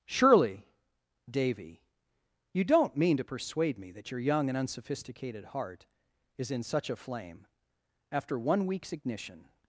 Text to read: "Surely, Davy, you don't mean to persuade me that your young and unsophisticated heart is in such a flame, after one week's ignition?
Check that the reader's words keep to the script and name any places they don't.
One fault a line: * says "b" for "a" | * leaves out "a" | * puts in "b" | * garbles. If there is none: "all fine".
all fine